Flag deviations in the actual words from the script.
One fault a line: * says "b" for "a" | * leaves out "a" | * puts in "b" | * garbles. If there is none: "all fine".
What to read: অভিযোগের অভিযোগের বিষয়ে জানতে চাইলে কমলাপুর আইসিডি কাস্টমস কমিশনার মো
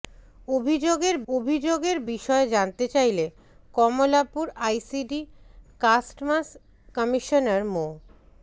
all fine